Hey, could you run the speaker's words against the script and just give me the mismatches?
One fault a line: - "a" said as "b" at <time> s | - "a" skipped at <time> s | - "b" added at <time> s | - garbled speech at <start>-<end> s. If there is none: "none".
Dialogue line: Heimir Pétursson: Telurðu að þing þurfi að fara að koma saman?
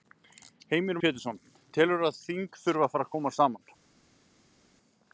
none